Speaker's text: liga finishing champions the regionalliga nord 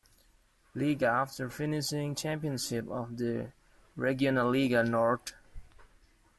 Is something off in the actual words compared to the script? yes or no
yes